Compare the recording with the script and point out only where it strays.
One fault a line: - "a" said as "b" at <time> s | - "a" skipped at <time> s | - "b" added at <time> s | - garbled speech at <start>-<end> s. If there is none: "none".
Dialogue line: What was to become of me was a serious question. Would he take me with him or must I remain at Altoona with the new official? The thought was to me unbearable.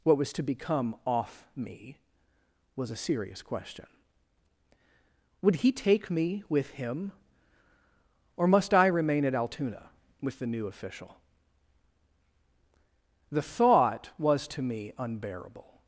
- "of" said as "off" at 1.1 s